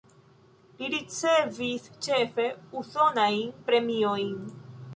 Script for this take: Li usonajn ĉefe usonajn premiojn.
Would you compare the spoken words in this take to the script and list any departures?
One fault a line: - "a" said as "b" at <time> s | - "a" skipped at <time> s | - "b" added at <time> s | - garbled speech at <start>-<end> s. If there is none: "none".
- "usonajn" said as "ricevis" at 0.9 s